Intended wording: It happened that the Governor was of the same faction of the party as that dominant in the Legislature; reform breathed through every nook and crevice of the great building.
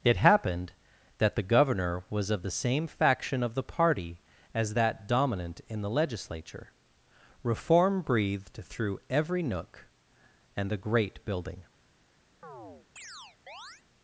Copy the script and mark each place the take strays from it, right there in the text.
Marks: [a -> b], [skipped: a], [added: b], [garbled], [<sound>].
It happened that the Governor was of the same faction of the party as that dominant in the Legislature; reform breathed through every nook and [skipped: crevice of] the great building. [chirp]